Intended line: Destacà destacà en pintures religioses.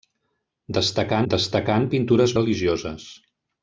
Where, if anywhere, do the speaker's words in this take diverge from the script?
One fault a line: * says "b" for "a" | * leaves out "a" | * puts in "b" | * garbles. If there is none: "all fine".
all fine